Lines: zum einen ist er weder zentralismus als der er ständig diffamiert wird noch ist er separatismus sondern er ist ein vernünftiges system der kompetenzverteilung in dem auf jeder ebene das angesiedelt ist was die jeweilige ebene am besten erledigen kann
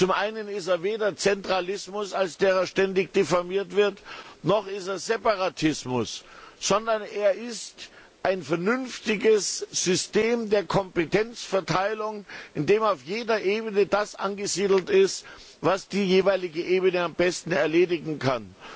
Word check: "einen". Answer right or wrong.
right